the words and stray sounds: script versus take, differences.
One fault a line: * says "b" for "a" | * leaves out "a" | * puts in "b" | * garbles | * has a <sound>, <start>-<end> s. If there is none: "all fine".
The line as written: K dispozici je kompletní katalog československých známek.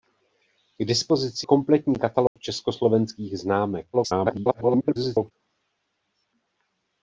* leaves out "je"
* has a dropout, 2.3-2.4 s
* garbles